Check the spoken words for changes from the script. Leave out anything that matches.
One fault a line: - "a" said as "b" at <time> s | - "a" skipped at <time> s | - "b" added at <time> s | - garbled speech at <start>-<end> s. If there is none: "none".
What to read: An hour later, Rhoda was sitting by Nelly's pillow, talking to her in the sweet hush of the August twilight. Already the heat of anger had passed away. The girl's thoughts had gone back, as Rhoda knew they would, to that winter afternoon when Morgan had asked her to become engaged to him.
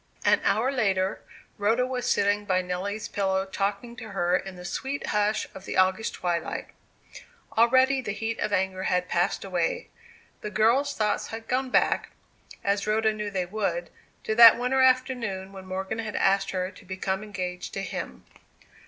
none